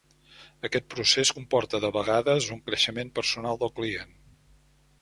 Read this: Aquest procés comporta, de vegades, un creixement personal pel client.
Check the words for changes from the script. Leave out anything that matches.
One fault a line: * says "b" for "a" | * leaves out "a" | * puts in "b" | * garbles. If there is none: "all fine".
* says "del" for "pel"